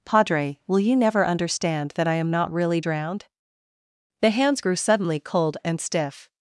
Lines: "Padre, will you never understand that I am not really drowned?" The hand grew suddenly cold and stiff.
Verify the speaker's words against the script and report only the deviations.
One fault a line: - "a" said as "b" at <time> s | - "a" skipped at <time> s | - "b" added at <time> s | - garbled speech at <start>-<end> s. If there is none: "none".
- "hand" said as "hands" at 4.3 s